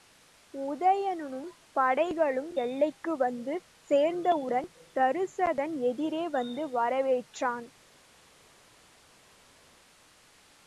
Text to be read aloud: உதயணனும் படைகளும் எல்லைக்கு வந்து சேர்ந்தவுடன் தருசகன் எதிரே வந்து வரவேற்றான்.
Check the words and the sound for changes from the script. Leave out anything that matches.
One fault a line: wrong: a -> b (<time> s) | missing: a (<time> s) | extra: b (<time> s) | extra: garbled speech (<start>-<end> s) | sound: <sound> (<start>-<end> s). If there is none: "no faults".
no faults